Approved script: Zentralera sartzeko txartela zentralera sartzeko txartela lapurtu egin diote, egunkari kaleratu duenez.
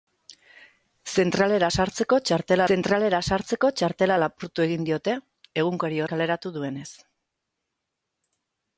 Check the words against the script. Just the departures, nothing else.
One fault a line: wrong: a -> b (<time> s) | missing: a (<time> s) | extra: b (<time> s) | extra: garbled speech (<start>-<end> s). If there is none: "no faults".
no faults